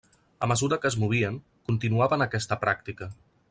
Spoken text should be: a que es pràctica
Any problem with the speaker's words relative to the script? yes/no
yes